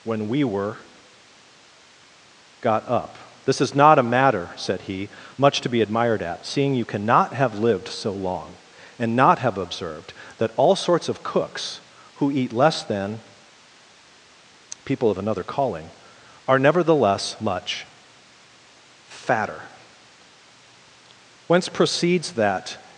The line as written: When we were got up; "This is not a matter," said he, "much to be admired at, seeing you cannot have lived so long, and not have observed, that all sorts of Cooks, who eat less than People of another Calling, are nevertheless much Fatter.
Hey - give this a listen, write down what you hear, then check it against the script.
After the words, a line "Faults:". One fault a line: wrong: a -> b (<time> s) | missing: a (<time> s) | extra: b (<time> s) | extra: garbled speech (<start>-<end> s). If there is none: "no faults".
When we were got up; "This is not a matter," said he, "much to be admired at, seeing you cannot have lived so long, and not have observed, that all sorts of Cooks, who eat less than People of another Calling, are nevertheless much Fatter. Whence proceeds that
Faults:
extra: Whence proceeds that (21.5 s)